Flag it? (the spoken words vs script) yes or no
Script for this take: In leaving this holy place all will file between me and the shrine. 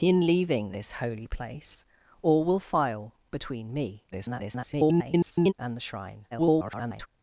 yes